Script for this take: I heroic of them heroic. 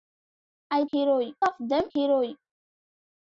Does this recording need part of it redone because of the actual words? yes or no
no